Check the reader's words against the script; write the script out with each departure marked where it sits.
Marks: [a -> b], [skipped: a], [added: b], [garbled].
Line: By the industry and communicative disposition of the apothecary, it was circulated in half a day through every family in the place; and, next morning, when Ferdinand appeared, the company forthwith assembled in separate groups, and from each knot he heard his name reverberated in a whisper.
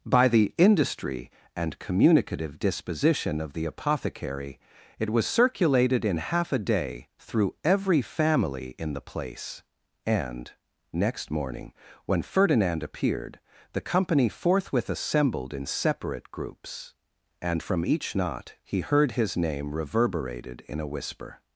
By the industry and communicative disposition of the apothecary, it was circulated in half a day through every family in the place; and, next morning, when Ferdinand appeared, the company forthwith assembled in separate groups, and from each knot he heard his name reverberated in a whisper.